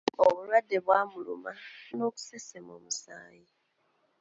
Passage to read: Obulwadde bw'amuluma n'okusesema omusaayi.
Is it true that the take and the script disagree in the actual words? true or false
false